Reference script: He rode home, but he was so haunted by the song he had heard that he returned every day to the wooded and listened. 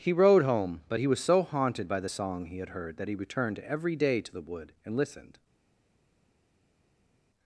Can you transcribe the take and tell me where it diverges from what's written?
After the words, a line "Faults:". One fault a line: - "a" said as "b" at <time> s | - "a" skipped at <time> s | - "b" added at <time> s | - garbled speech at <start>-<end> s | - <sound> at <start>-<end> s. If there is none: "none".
He rode home, but he was so haunted by the song he had heard that he returned every day to the wood and listened.
Faults:
- "wooded" said as "wood" at 4.4 s